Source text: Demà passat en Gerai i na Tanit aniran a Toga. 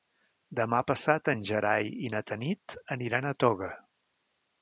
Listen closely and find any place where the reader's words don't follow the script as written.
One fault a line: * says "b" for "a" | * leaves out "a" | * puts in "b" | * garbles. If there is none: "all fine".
all fine